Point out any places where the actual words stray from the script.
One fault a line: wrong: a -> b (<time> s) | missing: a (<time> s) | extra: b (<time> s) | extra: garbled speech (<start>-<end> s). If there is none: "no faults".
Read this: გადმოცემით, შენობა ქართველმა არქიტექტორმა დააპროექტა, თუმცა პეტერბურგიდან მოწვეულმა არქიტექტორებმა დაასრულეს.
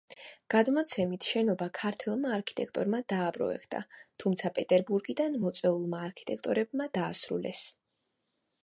no faults